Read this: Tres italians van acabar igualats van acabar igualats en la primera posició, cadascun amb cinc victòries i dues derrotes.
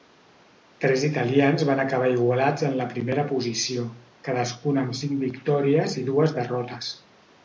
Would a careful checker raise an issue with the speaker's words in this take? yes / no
yes